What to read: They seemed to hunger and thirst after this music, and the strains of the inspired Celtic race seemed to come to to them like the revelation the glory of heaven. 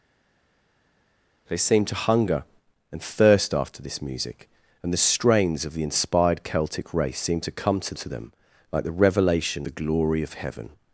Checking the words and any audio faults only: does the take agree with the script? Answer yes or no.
yes